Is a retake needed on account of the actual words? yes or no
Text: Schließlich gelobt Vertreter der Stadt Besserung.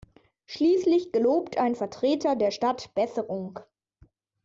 yes